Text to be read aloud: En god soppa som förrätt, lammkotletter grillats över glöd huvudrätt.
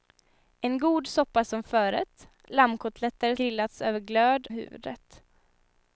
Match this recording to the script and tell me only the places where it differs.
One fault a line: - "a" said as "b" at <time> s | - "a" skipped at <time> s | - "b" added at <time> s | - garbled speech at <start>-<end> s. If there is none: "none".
none